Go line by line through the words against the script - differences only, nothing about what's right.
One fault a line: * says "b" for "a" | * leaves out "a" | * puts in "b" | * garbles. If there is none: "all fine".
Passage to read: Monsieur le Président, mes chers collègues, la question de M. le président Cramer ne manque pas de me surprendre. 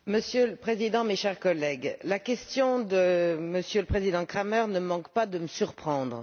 all fine